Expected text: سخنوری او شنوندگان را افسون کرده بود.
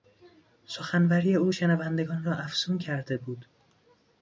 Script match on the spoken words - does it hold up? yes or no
yes